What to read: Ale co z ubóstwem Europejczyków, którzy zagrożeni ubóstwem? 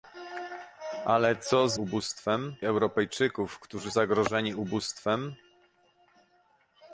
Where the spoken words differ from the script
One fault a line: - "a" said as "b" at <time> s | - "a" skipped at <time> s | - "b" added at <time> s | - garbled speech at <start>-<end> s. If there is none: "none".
none